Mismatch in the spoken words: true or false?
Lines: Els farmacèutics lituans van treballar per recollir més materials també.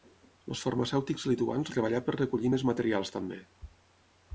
true